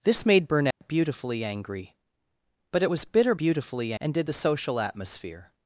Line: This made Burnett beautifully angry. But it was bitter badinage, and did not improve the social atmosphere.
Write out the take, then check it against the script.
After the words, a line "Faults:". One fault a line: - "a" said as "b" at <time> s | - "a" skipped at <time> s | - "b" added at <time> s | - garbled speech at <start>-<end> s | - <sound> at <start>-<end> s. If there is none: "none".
This made Burnett beautifully angry. But it was bitter beautifully, and did the social atmosphere.
Faults:
- dropout at 0.7-0.8 s
- "badinage" said as "beautifully" at 3.4 s
- "not improve" skipped at 4.3 s